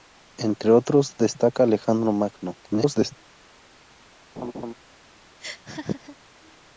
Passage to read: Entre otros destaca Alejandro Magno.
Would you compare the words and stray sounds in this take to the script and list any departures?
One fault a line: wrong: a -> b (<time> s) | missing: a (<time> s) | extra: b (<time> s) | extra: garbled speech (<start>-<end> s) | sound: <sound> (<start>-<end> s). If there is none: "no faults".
extra: garbled speech (2.6-3.2 s)
sound: laugh (4.4-4.7 s)
sound: laugh (5.4-6.2 s)